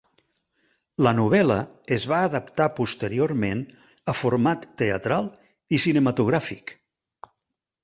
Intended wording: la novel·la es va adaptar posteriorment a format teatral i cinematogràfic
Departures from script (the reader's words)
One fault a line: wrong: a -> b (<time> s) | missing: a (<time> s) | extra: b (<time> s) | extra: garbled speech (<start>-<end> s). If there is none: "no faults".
no faults